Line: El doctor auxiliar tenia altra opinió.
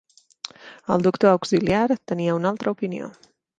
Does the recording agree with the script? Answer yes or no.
no